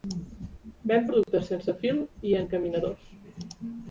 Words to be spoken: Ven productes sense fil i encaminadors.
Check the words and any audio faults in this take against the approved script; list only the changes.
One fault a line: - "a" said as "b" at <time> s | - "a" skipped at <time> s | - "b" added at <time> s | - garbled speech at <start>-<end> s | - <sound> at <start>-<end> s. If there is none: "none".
- dropout at 1.2-1.3 s